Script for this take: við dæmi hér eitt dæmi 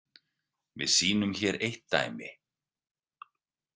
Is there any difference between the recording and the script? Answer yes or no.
yes